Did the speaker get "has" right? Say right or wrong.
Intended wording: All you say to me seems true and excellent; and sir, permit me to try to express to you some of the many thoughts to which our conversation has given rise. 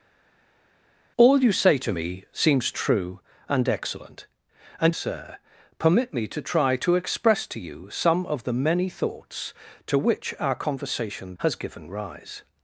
right